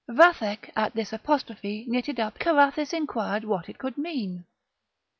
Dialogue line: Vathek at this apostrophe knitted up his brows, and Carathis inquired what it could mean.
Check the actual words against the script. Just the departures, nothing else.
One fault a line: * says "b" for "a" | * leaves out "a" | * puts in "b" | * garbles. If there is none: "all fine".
* leaves out "his brows and"